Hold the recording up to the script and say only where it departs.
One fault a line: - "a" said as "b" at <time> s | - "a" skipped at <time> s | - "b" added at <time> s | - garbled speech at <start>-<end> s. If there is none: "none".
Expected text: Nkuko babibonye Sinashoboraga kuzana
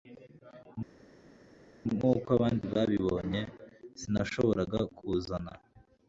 - "abandi" added at 2.4 s